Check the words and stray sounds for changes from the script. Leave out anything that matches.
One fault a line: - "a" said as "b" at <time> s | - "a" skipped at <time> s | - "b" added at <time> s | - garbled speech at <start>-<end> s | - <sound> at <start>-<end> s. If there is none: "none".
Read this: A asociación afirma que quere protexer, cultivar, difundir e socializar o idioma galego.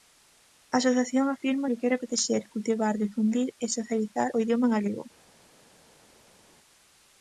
none